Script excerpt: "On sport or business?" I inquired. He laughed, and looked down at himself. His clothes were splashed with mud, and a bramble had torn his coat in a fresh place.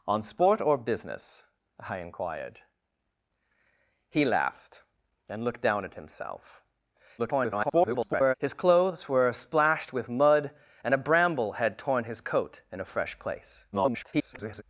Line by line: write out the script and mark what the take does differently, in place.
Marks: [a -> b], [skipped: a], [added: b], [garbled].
"On sport or business?" I inquired. He laughed, and looked down at himself. [garbled] His clothes were splashed with mud, and a bramble had torn his coat in a fresh place. [garbled]